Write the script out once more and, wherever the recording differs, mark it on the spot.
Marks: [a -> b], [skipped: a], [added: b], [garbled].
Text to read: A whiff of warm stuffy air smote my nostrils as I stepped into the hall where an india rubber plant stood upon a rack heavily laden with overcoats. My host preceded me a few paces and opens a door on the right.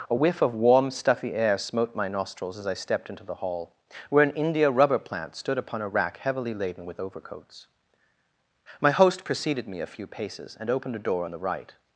A whiff of warm stuffy air smote my nostrils as I stepped into the hall where an india rubber plant stood upon a rack heavily laden with overcoats. My host preceded me a few paces and [opens -> opened] a door on the right.